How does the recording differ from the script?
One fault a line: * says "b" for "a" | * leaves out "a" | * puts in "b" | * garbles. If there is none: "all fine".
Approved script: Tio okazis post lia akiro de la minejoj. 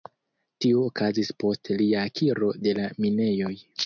all fine